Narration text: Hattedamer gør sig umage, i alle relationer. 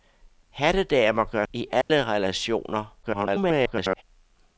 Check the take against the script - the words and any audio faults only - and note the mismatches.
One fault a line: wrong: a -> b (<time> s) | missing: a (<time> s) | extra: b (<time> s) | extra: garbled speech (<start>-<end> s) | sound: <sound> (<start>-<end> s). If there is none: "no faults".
missing: sig umage (1.4 s)
sound: dropout (1.8-1.9 s)
extra: garbled speech (3.0-4.0 s)